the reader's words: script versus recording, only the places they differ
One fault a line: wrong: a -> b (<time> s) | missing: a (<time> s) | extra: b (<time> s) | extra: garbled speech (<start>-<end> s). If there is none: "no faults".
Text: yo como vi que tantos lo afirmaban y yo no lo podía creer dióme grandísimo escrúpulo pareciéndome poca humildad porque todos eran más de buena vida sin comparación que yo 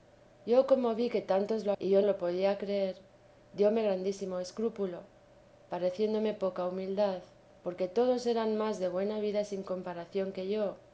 missing: afirmaban (1.7 s)
missing: no (2.0 s)